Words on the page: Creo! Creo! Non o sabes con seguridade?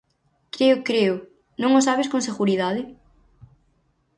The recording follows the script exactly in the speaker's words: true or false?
true